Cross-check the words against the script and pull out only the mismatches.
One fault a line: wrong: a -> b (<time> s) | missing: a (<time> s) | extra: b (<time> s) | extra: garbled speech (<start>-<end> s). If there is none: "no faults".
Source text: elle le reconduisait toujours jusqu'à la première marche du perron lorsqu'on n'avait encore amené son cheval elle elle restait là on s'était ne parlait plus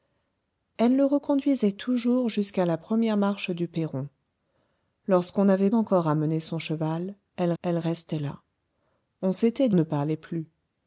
no faults